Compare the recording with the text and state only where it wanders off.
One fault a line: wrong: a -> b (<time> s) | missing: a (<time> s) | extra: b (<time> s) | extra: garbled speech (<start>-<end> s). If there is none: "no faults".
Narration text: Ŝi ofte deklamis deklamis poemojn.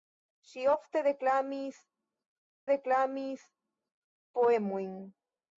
no faults